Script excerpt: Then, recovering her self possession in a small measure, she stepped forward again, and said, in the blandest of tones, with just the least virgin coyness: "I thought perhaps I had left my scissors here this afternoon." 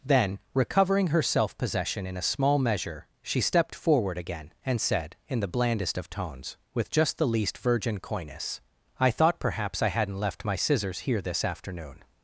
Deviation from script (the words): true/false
true